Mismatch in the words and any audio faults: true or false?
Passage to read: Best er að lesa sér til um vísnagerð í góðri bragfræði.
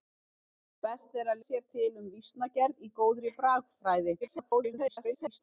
true